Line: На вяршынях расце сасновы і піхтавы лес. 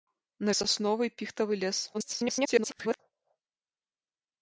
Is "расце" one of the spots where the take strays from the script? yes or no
yes